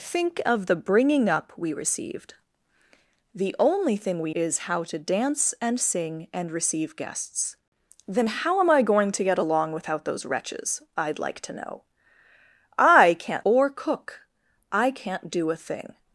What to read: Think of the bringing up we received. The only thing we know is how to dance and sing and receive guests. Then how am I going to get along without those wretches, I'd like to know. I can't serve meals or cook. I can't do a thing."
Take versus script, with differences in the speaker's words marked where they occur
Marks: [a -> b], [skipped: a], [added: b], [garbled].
Think of the bringing up we received. The only thing we [skipped: know] is how to dance and sing and receive guests. Then how am I going to get along without those wretches, I'd like to know. I can't [skipped: serve meals] or cook. I can't do a thing."